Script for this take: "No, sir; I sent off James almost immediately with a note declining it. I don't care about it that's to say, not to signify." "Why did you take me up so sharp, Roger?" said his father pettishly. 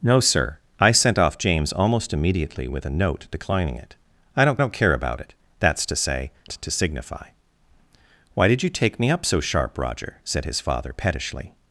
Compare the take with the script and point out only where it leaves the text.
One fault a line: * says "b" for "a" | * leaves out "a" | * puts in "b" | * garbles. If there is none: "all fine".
* puts in "don't"
* leaves out "not"